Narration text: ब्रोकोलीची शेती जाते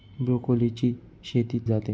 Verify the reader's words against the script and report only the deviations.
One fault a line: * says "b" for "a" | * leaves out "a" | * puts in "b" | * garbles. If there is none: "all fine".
all fine